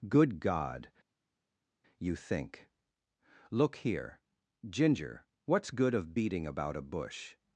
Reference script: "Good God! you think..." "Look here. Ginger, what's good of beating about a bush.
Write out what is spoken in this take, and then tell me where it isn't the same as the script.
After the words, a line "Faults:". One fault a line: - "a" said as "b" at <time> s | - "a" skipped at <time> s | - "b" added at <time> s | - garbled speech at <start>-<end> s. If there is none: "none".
"Good God! you think..." "Look here. Ginger, what's good of beating about a bush.
Faults:
none